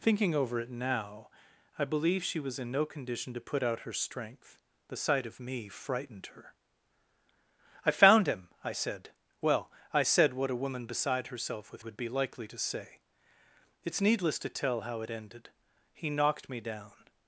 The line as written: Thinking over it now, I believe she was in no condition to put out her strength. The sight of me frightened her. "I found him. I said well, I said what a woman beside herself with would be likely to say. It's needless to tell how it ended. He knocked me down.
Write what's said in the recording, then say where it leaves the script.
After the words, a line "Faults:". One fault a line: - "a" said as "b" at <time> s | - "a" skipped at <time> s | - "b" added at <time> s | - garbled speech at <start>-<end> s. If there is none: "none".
Thinking over it now, I believe she was in no condition to put out her strength. The sight of me frightened her. "I found him. I said well, I said what a woman beside herself with would be likely to say. It's needless to tell how it ended. He knocked me down.
Faults:
none